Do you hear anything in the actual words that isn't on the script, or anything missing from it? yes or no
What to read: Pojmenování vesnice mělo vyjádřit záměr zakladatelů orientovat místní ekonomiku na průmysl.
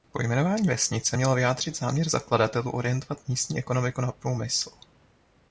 no